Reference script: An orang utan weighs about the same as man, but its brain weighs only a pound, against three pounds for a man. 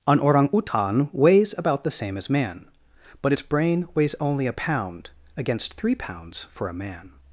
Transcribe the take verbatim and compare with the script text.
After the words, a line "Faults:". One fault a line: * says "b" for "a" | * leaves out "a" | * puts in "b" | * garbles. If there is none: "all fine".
An orang utan weighs about the same as man, but its brain weighs only a pound, against three pounds for a man.
Faults:
all fine